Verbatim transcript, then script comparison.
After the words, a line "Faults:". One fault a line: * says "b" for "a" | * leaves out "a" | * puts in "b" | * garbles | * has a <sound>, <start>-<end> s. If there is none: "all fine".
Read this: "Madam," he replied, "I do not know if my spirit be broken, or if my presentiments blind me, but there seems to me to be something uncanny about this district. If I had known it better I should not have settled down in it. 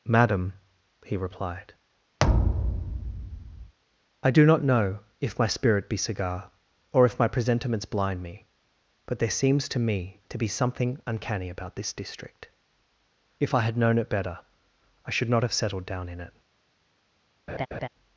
"Madam," he replied, "I do not know if my spirit be cigar, or if my presentiments blind me, but there seems to me to be something uncanny about this district. If I had known it better I should not have settled down in it.
Faults:
* has a thud, 2.2-3.7 s
* says "cigar" for "broken"
* has a laugh, 17.5-17.9 s